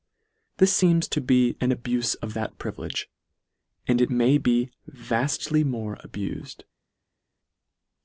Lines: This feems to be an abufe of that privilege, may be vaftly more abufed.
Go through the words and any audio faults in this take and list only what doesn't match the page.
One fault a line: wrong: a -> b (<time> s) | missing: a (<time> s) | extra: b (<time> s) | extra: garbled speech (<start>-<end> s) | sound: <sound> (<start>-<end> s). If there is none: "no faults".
extra: and it (3.9 s)